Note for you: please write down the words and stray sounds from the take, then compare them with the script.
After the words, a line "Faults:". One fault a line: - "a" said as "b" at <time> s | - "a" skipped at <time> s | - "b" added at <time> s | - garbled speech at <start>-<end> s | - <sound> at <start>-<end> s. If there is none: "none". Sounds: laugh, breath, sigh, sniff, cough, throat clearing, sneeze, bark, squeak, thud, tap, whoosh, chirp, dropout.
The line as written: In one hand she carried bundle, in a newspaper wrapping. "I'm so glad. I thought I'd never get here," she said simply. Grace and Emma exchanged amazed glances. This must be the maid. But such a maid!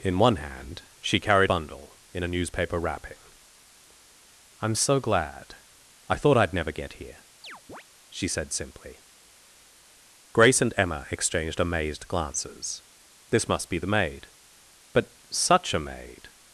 In one hand she carried bundle, in a newspaper wrapping. "I'm so glad. I thought I'd never get here," she said simply. Grace and Emma exchanged amazed glances. This must be the maid. But such a maid!
Faults:
- chirp at 7.4-7.8 s